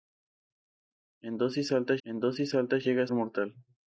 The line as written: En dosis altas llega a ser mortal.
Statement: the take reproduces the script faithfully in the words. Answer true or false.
false